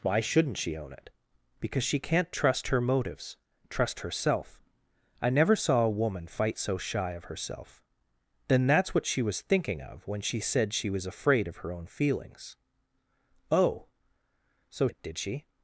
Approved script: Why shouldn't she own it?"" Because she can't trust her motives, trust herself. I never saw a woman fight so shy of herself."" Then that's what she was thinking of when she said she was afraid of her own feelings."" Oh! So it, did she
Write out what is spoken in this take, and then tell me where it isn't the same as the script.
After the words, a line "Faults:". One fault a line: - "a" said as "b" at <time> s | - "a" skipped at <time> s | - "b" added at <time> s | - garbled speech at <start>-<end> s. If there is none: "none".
Why shouldn't she own it?"" Because she can't trust her motives, trust herself. I never saw a woman fight so shy of herself."" Then that's what she was thinking of when she said she was afraid of her own feelings."" Oh! So it, did she
Faults:
none